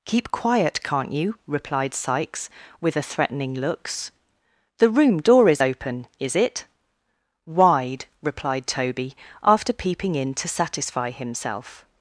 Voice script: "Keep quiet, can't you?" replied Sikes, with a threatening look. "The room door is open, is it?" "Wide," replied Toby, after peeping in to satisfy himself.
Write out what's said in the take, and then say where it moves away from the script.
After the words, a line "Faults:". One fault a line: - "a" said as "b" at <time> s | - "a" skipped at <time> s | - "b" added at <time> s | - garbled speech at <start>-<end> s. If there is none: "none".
"Keep quiet, can't you?" replied Sikes, with a threatening looks. "The room door is open, is it?" "Wide," replied Toby, after peeping in to satisfy himself.
Faults:
- "look" said as "looks" at 3.5 s